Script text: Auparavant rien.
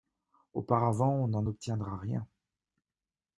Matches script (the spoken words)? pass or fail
fail